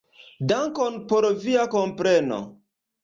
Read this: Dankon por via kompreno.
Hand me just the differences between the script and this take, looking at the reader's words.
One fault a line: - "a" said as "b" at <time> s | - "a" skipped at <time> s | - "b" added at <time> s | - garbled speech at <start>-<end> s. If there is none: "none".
none